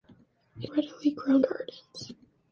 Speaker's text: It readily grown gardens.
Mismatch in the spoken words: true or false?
false